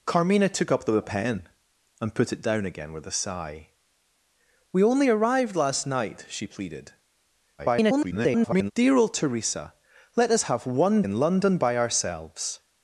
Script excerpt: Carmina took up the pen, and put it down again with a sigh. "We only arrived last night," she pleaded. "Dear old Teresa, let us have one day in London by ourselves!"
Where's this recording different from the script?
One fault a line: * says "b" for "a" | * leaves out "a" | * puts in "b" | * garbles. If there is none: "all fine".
* garbles
* leaves out "day"